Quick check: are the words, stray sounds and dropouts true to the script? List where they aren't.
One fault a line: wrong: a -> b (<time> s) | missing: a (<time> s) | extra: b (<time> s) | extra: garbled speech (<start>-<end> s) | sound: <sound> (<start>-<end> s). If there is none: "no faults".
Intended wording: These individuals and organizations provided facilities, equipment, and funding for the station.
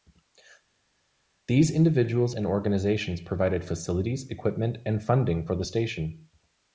no faults